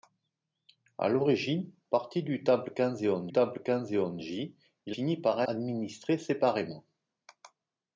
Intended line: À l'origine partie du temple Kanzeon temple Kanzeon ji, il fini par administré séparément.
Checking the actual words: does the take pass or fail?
pass